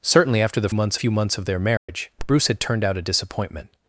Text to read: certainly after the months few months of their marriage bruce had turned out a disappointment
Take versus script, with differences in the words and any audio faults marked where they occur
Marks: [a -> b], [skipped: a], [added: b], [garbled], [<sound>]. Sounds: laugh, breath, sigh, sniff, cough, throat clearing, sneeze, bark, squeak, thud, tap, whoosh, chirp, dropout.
certainly after the months few months of their marriage [dropout] bruce had turned out a disappointment